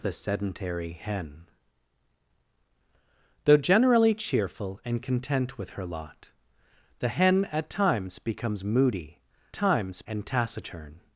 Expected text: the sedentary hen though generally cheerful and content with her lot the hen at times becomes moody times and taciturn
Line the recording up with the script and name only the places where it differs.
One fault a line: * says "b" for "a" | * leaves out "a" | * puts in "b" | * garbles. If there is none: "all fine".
all fine